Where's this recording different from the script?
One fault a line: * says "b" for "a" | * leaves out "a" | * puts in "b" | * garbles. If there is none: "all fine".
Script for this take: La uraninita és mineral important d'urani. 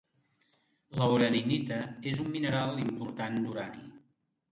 * puts in "un"